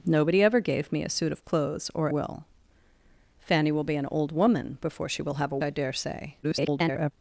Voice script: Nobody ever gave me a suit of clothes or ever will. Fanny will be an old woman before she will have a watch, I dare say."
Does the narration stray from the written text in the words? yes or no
yes